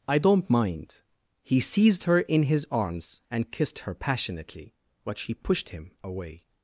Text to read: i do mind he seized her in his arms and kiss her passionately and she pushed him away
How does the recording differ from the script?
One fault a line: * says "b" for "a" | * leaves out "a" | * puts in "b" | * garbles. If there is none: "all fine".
* says "don't" for "do"
* says "kissed" for "kiss"
* says "but" for "and"